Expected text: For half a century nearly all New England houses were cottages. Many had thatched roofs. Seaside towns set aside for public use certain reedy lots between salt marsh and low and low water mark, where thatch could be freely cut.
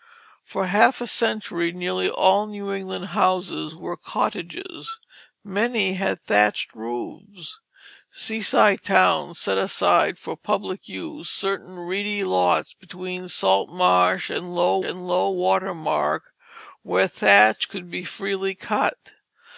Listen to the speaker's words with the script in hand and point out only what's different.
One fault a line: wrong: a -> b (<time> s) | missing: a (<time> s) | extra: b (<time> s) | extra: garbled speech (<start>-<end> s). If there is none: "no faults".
no faults